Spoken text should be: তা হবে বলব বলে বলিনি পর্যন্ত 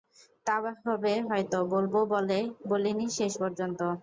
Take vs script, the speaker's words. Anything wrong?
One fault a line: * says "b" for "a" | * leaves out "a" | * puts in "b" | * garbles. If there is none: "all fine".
* puts in "হয়তো"
* puts in "শেষ"